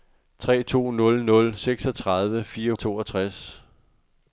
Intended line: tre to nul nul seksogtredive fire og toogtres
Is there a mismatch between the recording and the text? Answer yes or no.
no